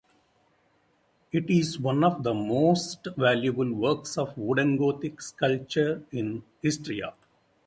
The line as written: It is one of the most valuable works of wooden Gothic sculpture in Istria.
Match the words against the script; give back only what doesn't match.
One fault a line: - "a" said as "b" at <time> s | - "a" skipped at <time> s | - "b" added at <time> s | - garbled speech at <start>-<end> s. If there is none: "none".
none